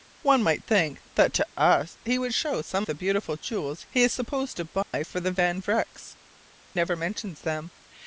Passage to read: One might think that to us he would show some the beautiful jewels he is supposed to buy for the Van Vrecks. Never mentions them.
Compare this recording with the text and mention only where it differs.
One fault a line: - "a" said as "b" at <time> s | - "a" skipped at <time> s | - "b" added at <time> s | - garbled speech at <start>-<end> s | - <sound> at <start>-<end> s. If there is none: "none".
- dropout at 4.8-4.9 s